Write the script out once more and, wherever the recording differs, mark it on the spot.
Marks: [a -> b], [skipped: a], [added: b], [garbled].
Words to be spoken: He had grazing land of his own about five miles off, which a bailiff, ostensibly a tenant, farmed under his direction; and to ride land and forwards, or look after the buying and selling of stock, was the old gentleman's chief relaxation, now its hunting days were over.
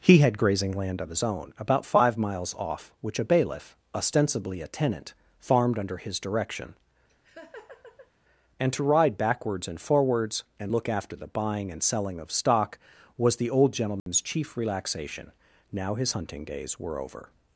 He had grazing land of his own about five miles off, which a bailiff, ostensibly a tenant, farmed under his direction; and to ride [land -> backwards] and forwards, [or -> and] look after the buying and selling of stock, was the old gentleman's chief relaxation, now [its -> his] hunting days were over.